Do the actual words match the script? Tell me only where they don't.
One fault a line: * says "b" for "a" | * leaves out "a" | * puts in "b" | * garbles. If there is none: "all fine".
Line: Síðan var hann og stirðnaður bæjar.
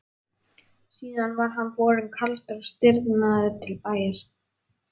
* puts in "borinn kaldur"
* puts in "til"